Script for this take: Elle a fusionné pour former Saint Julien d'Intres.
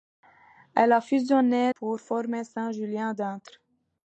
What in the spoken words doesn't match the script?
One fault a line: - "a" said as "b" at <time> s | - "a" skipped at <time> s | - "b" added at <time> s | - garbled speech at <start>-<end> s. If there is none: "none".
none